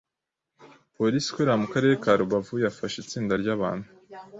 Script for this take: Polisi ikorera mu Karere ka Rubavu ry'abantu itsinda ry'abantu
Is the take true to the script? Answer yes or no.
no